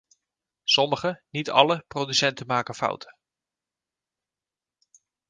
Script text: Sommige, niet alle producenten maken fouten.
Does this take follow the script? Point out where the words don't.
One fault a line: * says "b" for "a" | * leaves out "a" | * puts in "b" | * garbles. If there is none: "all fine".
all fine